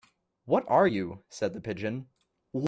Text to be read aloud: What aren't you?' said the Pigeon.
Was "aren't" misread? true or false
true